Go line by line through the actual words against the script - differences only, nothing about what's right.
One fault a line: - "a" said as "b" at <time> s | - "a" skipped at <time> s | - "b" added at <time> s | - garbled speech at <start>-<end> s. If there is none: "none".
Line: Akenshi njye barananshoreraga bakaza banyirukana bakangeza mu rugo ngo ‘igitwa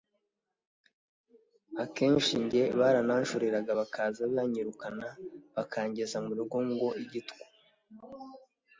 none